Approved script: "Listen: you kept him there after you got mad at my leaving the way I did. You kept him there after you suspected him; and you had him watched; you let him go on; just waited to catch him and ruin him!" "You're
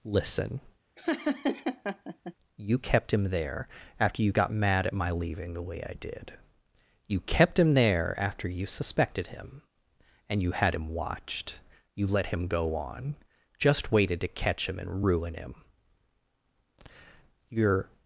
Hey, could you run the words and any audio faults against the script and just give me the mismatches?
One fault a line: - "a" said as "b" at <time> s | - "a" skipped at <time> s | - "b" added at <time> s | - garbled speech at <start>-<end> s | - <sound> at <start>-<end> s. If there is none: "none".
- laugh at 1.0-2.3 s